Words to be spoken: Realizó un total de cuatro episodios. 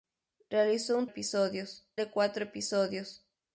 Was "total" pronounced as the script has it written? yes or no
no